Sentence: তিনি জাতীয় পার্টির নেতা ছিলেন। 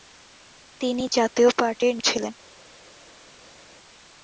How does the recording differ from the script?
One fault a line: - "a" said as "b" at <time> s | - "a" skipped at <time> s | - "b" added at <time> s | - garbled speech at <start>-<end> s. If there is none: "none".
- "নেতা" skipped at 1.9 s